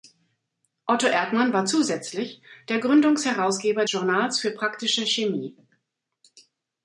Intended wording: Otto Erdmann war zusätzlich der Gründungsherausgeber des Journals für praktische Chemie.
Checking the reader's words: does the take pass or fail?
fail